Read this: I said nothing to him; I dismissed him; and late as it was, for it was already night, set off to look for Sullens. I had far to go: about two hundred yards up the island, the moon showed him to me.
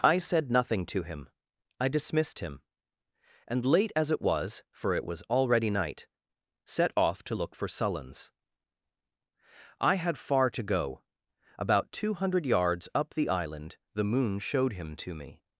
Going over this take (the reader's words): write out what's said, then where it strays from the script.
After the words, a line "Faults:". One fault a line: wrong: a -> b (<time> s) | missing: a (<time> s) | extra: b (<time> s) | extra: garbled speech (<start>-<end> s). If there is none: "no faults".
I said nothing to him; I dismissed him; and late as it was, for it was already night, set off to look for Sullens. I had far to go: about two hundred yards up the island, the moon showed him to me.
Faults:
no faults